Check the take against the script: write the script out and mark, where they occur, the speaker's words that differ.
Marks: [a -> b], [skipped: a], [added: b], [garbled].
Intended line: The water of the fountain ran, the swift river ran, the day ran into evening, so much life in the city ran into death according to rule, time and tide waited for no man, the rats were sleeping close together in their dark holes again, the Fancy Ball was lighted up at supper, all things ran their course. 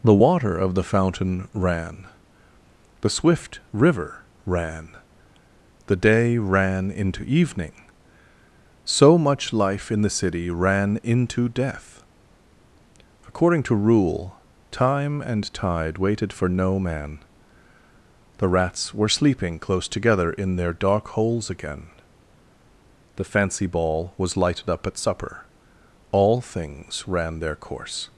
The water of the fountain ran, the swift river ran, the day ran into evening, so much life in the city ran into death according to rule, time and tide waited for no man, the rats were sleeping close together in their dark holes again, the Fancy Ball was lighted up at supper, all things ran their course.